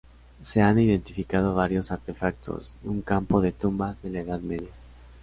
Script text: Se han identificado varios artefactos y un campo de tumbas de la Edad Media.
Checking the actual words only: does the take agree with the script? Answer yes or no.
yes